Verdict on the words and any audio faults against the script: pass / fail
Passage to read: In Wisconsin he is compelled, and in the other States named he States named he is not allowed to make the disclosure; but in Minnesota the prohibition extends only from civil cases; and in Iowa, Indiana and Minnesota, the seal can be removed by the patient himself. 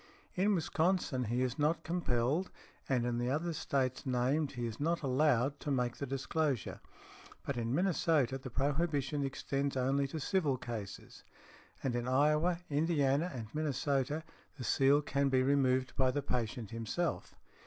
fail